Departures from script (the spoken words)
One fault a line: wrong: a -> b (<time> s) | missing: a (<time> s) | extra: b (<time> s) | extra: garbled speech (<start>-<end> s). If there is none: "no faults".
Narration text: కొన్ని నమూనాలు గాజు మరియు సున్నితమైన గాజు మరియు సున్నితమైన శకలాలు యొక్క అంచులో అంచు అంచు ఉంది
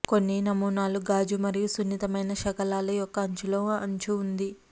missing: గాజు మరియు సున్నితమైన (2.3 s)
missing: అంచు (4.1 s)